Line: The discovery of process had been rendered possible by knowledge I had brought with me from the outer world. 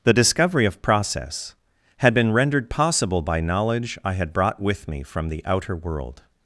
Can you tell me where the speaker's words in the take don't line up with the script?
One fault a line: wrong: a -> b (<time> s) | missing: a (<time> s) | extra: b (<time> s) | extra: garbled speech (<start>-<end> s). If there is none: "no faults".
no faults